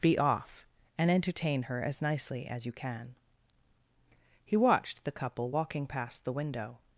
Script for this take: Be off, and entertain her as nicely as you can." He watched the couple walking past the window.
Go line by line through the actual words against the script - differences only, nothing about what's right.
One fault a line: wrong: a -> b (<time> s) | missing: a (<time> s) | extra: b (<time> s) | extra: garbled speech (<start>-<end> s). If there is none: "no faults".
no faults